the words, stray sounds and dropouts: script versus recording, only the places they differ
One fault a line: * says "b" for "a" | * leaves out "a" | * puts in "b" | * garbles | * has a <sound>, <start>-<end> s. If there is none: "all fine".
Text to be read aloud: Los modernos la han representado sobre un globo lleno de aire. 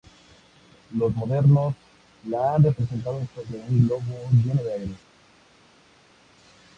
all fine